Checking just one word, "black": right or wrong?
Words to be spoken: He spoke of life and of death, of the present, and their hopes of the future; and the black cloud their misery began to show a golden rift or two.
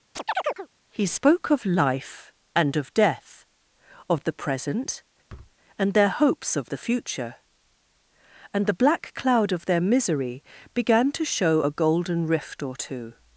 right